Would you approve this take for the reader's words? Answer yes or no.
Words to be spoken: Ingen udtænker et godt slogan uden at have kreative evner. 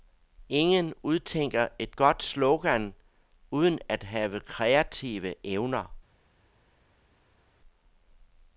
yes